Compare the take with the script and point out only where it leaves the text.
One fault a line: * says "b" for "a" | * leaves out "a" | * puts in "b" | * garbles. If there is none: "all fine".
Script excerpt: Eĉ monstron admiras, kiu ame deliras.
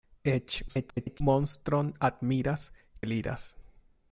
* garbles
* leaves out "kiu ame"